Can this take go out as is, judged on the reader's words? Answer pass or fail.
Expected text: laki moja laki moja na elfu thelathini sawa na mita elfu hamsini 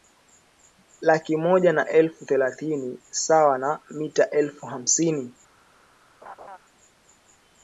fail